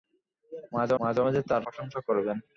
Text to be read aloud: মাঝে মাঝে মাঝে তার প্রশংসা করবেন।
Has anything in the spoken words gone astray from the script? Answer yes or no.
no